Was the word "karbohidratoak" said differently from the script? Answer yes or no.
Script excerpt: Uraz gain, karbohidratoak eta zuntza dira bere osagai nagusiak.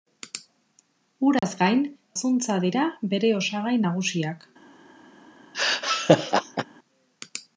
yes